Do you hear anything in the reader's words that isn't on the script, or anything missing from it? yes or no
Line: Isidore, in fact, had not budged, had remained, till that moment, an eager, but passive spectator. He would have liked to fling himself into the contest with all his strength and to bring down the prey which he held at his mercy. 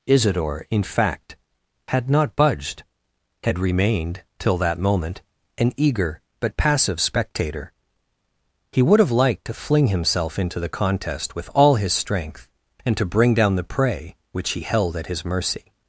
no